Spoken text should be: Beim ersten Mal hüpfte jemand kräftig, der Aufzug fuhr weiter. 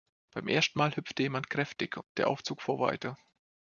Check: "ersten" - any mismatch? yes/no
no